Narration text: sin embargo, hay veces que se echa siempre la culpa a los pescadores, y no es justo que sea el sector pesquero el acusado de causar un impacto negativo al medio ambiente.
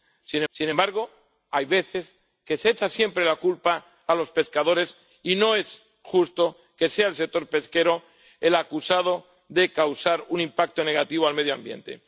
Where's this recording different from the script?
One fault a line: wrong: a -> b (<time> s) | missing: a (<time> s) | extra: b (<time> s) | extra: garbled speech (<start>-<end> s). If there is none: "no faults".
extra: sin (0.5 s)